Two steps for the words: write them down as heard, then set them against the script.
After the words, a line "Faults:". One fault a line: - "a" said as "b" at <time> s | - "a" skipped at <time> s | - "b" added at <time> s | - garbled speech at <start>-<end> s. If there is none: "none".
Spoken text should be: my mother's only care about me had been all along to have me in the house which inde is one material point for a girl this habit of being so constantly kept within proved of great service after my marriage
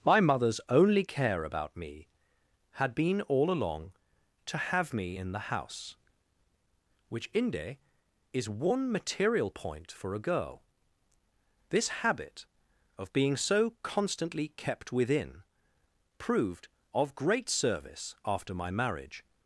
my mother's only care about me had been all along to have me in the house which inde is one material point for a girl this habit of being so constantly kept within proved of great service after my marriage
Faults:
none